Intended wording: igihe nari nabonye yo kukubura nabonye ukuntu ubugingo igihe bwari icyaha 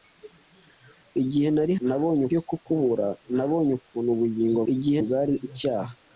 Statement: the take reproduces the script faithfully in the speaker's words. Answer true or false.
true